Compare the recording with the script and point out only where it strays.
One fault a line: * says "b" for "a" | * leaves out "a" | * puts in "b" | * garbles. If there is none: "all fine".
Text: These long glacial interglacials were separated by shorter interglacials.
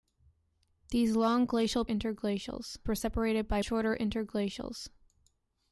all fine